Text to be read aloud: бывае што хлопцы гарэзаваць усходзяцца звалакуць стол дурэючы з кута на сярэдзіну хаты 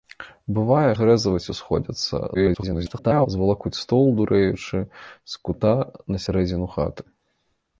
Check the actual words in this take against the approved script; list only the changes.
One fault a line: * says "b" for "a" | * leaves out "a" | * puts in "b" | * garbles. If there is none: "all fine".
* leaves out "што хлопцы"
* garbles